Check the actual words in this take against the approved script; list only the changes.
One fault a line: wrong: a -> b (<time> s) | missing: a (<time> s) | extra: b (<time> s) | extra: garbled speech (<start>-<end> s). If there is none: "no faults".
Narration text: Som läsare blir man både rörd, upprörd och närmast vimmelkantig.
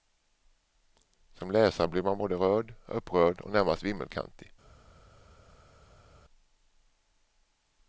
no faults